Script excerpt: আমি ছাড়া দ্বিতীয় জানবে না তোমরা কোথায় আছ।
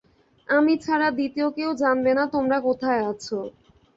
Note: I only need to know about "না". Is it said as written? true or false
true